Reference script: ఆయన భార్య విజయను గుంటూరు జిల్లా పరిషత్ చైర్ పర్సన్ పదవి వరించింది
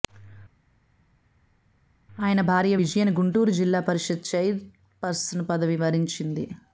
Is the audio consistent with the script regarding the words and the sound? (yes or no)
yes